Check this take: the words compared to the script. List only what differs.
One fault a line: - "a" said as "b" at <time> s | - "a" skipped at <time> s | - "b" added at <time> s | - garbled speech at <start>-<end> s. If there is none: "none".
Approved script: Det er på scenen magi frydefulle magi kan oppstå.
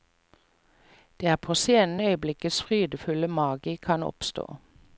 - "magi" said as "øyeblikkets" at 2.0 s